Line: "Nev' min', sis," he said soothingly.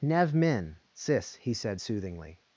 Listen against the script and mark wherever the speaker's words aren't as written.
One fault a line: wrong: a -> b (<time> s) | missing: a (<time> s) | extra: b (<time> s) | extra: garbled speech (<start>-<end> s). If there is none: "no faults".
no faults